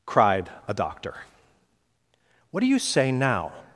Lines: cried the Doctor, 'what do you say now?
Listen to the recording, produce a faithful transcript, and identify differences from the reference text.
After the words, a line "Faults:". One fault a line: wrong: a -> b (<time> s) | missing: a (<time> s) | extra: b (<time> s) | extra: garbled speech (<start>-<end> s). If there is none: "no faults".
cried a Doctor, 'what do you say now?
Faults:
wrong: the -> a (0.7 s)